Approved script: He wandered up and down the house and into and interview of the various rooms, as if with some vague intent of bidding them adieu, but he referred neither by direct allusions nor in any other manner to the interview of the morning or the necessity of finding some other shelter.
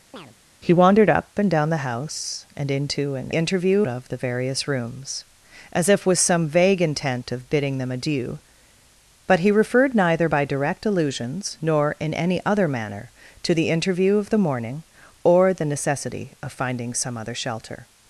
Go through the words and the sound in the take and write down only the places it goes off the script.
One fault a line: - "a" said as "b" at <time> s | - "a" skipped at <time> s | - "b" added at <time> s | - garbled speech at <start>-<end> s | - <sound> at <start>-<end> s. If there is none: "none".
- chirp at 0.1-0.3 s